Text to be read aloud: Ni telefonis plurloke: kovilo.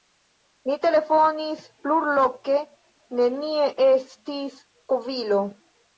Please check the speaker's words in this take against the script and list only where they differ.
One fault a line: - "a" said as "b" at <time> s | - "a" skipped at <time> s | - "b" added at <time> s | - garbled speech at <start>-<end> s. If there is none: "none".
- "nenie estis" added at 3.2 s